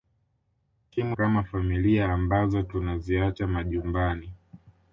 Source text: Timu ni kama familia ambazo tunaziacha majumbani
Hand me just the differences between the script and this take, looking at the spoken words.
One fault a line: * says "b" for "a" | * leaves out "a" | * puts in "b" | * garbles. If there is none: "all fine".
* leaves out "ni"